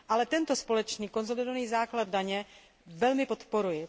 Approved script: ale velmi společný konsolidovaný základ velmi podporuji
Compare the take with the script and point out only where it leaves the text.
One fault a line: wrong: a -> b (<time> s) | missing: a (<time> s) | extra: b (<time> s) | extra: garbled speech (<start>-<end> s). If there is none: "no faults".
wrong: velmi -> tento (0.2 s)
extra: daně (2.1 s)